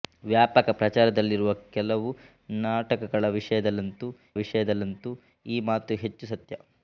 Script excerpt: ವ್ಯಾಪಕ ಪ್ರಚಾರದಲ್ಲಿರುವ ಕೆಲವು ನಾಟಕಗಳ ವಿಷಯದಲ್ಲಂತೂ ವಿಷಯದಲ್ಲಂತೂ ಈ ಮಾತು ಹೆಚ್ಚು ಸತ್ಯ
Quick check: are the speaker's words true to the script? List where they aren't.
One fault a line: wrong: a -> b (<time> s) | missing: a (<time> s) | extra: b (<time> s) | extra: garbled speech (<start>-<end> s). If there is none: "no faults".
no faults